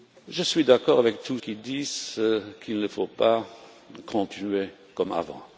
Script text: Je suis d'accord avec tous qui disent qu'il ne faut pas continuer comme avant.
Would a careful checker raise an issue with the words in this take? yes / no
no